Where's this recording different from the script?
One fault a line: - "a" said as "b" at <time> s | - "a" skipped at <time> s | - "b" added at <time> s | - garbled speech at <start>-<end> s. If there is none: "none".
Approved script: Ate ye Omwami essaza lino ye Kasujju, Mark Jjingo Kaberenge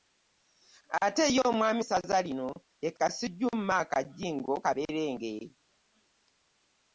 none